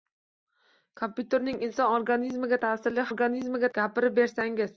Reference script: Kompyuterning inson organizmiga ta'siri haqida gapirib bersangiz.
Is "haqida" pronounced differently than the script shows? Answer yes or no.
yes